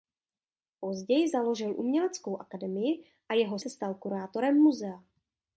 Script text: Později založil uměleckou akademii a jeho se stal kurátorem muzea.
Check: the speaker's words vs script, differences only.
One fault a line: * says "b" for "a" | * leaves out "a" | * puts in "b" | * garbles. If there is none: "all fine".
all fine